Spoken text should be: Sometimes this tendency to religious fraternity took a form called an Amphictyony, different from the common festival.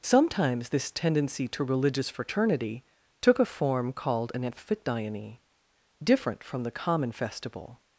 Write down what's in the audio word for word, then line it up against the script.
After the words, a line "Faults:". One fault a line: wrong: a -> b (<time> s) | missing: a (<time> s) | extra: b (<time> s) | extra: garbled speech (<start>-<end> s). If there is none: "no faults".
Sometimes this tendency to religious fraternity took a form called an Amphictyony, different from the common festival.
Faults:
no faults